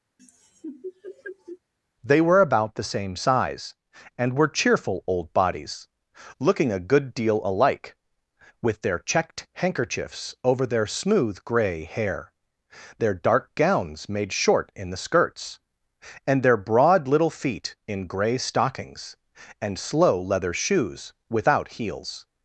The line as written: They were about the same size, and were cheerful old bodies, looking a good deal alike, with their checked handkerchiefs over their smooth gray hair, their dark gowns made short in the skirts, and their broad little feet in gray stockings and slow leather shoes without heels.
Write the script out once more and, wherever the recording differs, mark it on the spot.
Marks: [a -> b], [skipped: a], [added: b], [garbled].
They were about the same size, and were cheerful old bodies, looking a good deal alike, with their checked handkerchiefs over their smooth gray hair, their dark gowns made short in the skirts, and their broad little feet in gray stockings and slow leather shoes without heels.